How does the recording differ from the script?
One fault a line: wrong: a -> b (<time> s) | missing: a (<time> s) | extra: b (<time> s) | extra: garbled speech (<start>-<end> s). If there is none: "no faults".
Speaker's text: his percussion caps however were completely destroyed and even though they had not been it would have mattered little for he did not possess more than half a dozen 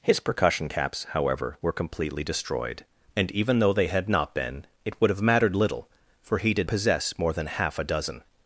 missing: not (6.7 s)